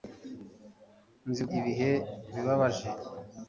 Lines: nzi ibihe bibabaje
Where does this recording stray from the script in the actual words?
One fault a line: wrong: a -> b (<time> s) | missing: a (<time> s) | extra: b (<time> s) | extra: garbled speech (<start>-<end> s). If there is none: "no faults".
no faults